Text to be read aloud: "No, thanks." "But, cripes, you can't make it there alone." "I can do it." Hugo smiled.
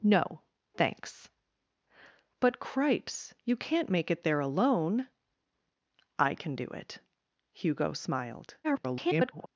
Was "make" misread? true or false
false